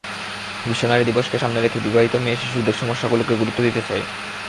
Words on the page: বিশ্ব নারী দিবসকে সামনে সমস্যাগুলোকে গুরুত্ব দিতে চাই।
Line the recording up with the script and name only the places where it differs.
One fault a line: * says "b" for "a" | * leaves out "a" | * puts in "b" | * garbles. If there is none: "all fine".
* puts in "রেখে বিবাহিত মেয়েশিশুদের"